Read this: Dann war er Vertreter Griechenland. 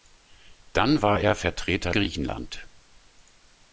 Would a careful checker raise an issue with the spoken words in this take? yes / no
no